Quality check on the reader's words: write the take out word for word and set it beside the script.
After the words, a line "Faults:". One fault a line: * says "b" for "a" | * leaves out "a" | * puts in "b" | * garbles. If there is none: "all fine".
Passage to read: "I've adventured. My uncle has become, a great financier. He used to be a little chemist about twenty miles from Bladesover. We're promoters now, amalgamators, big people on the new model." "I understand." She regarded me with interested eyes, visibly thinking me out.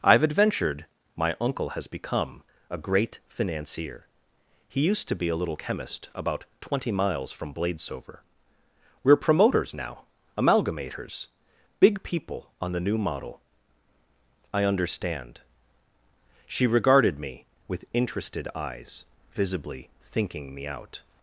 "I've adventured. My uncle has become, a great financier. He used to be a little chemist about twenty miles from Bladesover. We're promoters now, amalgamators, big people on the new model." "I understand." She regarded me with interested eyes, visibly thinking me out.
Faults:
all fine